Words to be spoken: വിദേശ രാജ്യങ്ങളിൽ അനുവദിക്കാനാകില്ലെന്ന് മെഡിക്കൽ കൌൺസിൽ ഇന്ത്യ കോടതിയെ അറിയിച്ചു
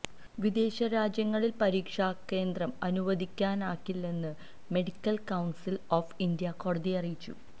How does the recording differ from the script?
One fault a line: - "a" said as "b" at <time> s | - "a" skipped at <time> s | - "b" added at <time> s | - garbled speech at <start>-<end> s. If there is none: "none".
- "പരീക്ഷാകേന്ദ്രം" added at 1.6 s
- "ഓഫ്" added at 6.0 s